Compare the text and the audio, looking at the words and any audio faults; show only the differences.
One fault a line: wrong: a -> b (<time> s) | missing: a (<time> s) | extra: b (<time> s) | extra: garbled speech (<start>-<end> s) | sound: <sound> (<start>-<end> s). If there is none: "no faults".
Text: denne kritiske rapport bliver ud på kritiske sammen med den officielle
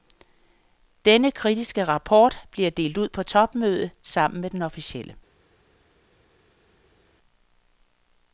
extra: delt (2.7 s)
wrong: kritiske -> topmødet (3.2 s)